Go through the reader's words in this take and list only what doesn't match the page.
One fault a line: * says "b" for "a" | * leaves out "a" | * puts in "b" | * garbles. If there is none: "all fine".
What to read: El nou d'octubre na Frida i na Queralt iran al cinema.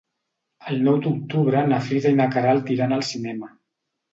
all fine